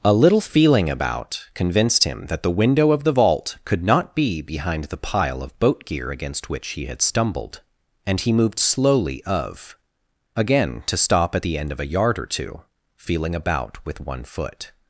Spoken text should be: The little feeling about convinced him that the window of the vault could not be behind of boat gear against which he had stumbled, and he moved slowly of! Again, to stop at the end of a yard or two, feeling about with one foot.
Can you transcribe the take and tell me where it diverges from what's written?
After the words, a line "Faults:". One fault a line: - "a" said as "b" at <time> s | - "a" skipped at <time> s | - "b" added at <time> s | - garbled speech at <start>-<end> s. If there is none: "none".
A little feeling about convinced him that the window of the vault could not be behind the pile of boat gear against which he had stumbled, and he moved slowly of! Again, to stop at the end of a yard or two, feeling about with one foot.
Faults:
- "The" said as "A" at 0.0 s
- "the pile" added at 4.9 s